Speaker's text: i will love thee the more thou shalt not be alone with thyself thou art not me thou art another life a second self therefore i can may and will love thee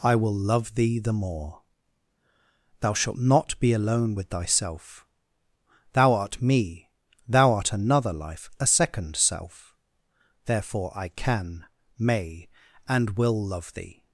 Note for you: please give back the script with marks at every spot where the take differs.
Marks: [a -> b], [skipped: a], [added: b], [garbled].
i will love thee the more thou shalt not be alone with thyself thou art [skipped: not] me thou art another life a second self therefore i can may and will love thee